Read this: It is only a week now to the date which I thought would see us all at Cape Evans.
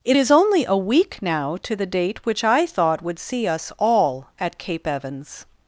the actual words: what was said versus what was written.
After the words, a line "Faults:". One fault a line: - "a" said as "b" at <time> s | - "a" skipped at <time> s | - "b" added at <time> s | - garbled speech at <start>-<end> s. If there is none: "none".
It is only a week now to the date which I thought would see us all at Cape Evans.
Faults:
none